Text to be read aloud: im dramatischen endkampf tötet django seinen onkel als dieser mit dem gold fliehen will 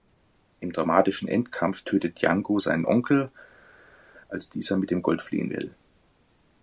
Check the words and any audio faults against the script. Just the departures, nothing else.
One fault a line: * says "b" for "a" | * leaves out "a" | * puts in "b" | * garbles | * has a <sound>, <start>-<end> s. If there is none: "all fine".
all fine